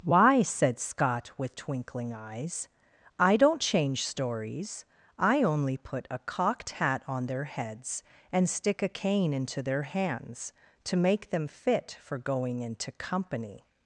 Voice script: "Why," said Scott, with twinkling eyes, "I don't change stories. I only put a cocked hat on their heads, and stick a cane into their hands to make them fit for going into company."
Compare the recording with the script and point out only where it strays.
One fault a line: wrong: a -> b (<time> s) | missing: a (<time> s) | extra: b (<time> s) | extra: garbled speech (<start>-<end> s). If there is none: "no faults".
no faults